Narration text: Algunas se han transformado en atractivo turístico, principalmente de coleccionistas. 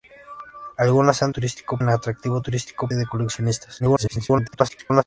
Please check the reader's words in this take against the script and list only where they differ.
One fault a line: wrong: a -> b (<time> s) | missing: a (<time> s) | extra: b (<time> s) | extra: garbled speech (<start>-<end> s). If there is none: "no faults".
wrong: transformado -> turístico (1.3 s)
missing: principalmente (2.9 s)
extra: garbled speech (3.8-5.0 s)